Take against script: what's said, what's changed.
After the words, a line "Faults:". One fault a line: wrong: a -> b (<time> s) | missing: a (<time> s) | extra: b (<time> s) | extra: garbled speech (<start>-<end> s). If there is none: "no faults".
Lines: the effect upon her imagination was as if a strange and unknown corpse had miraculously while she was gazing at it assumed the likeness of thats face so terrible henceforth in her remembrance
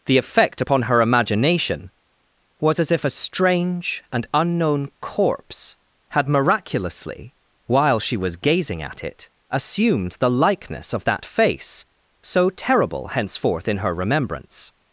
the effect upon her imagination was as if a strange and unknown corpse had miraculously while she was gazing at it assumed the likeness of that face so terrible henceforth in her remembrance
Faults:
wrong: thats -> that (11.0 s)